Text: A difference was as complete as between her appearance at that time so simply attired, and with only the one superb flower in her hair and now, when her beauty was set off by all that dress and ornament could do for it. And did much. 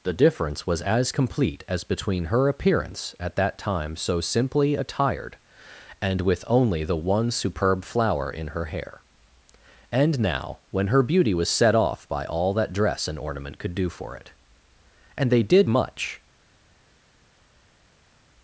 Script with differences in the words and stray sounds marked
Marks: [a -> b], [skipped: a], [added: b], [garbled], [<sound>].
[A -> The] difference was as complete as between her appearance at that time so simply attired, and with only the one superb flower in her hair and now, when her beauty was set off by all that dress and ornament could do for it. And [added: they] did much.